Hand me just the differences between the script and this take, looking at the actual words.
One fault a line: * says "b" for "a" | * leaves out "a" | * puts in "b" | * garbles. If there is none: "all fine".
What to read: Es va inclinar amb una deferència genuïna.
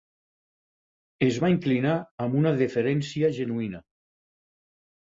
all fine